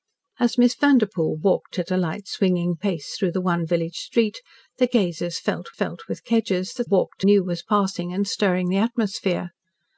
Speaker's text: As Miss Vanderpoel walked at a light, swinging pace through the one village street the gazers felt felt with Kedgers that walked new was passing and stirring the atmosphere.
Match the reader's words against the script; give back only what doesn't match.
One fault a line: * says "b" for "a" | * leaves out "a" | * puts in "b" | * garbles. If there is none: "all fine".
all fine